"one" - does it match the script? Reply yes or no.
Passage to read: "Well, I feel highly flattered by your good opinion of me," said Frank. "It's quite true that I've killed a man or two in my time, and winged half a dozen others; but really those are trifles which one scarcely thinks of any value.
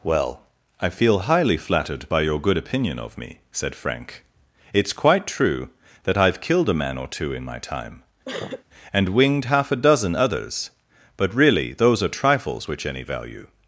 no